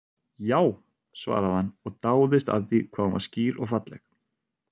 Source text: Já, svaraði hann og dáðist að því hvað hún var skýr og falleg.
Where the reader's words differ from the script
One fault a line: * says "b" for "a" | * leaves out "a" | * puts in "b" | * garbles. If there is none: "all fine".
all fine